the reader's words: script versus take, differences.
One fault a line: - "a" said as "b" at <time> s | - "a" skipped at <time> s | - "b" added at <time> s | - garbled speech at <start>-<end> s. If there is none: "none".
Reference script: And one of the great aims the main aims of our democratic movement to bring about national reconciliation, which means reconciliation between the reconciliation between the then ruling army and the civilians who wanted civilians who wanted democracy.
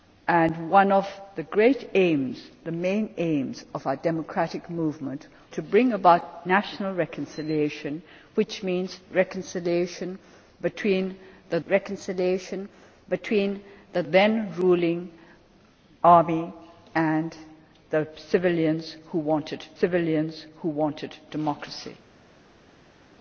none